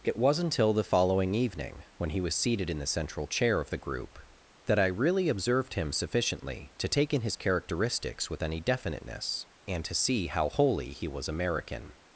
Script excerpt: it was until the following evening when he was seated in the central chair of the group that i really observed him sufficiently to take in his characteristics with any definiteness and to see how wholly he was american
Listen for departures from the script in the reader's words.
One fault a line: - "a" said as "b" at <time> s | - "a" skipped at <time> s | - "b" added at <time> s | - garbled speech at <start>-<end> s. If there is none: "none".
none